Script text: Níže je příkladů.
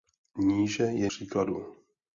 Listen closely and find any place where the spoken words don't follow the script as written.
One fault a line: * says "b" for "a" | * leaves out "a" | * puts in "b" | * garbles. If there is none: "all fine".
all fine